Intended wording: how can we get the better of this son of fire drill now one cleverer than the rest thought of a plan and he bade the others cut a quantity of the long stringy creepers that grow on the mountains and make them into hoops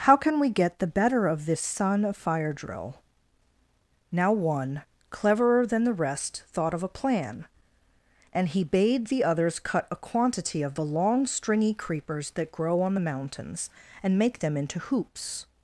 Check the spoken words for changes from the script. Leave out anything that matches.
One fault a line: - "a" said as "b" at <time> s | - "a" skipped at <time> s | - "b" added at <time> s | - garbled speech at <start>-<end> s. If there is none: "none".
none